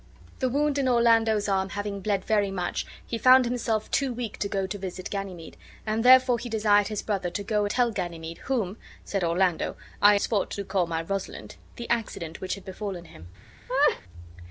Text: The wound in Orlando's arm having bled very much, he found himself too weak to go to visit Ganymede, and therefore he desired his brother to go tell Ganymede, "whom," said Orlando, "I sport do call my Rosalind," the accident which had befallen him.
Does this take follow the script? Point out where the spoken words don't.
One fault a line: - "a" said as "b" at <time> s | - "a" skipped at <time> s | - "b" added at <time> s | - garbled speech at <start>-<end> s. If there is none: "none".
none